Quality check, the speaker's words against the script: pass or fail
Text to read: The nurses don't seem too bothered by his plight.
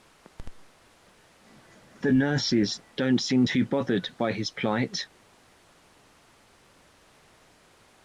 pass